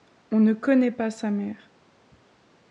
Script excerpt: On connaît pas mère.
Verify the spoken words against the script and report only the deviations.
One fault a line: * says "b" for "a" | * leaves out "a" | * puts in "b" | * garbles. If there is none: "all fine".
* puts in "ne"
* puts in "sa"